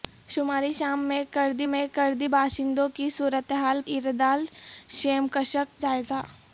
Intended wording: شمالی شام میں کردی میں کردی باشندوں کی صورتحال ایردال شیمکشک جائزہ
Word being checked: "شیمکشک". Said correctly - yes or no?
yes